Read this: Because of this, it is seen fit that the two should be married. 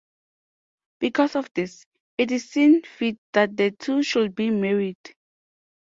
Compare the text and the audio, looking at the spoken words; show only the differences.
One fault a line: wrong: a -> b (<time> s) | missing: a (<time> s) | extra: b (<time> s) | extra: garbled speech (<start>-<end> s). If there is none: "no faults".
no faults